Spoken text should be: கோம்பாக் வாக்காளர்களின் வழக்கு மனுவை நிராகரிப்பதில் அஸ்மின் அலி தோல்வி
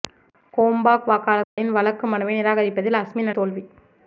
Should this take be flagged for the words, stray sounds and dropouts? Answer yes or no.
yes